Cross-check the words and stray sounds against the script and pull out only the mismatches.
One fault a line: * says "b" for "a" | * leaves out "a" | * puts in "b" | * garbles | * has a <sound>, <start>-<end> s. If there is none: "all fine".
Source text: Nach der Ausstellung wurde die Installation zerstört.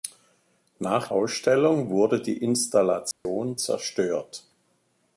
* leaves out "der"
* has a dropout, 3.1-3.3 s